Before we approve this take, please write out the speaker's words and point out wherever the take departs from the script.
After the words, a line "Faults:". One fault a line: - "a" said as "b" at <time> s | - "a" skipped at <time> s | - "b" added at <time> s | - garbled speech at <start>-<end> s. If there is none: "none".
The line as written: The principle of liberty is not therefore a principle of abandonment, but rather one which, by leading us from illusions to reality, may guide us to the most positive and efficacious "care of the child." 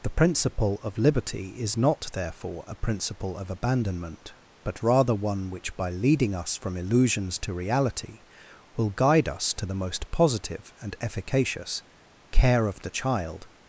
The principle of liberty is not therefore a principle of abandonment, but rather one which, by leading us from illusions to reality, will guide us to the most positive and efficacious "care of the child."
Faults:
- "may" said as "will" at 8.8 s